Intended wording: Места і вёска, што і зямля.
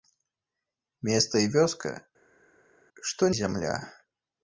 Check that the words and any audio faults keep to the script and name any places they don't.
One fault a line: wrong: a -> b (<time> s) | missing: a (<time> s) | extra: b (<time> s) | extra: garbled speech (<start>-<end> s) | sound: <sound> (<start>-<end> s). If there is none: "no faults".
no faults